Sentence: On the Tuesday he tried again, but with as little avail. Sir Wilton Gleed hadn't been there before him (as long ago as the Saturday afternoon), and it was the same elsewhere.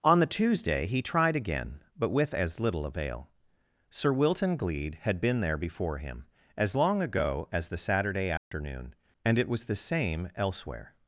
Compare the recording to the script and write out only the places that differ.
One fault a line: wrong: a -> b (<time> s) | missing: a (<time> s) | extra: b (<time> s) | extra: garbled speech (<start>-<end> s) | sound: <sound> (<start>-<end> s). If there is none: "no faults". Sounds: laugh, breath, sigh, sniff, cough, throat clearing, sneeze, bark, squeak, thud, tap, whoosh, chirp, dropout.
wrong: hadn't -> had (5.0 s)
sound: dropout (8.4-8.5 s)